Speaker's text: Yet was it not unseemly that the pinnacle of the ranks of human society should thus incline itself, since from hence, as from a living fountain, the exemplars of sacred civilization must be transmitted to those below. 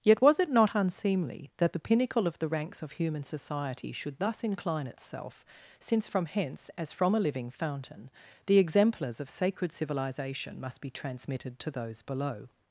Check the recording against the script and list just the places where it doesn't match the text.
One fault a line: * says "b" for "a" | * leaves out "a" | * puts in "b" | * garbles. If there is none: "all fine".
all fine